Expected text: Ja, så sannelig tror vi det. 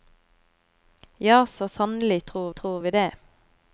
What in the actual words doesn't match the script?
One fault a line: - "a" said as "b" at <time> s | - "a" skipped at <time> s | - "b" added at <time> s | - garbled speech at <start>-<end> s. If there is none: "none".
- "tror" added at 2.5 s